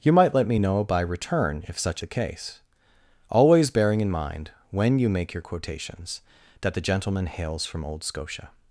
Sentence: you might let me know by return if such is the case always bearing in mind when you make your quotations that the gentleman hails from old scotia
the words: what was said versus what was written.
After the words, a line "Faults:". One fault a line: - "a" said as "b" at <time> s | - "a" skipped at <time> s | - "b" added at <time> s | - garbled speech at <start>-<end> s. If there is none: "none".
you might let me know by return if such the case always bearing in mind when you make your quotations that the gentleman hails from old scotia
Faults:
- "is" skipped at 2.0 s